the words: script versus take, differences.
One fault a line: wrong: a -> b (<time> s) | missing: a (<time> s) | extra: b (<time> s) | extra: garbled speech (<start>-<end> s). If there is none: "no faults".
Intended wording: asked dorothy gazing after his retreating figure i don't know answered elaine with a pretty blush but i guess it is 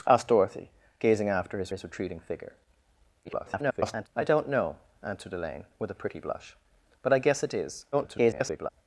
extra: his (1.7 s)
extra: garbled speech (3.2-4.1 s)
extra: garbled speech (7.9-8.7 s)